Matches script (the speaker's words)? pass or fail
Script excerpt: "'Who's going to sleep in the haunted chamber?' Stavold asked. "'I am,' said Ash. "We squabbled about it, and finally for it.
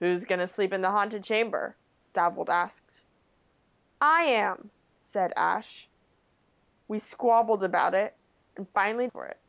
pass